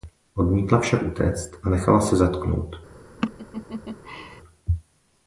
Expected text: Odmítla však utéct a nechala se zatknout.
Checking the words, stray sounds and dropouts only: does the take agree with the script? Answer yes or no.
no